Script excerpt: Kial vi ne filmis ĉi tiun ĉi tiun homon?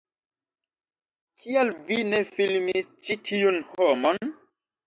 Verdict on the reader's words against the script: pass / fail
fail